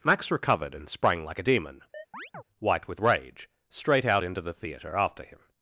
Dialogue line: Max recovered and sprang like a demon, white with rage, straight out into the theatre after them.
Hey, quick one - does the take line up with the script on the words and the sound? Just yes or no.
no